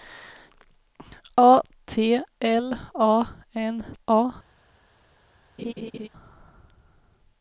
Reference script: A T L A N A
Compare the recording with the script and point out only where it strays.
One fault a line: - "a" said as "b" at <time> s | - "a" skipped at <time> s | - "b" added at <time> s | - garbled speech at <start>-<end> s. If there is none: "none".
none